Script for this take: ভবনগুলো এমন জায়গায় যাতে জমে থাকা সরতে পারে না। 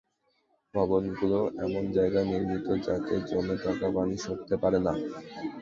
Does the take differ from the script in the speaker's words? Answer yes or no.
yes